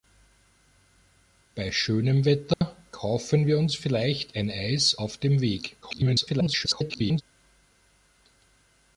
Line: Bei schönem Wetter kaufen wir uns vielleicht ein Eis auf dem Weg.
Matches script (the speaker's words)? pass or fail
fail